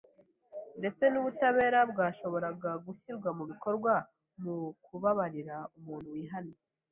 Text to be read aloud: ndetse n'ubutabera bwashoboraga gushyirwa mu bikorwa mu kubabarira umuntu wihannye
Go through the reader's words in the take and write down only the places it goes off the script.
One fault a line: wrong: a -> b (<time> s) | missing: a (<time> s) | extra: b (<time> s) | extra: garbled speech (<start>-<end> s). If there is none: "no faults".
no faults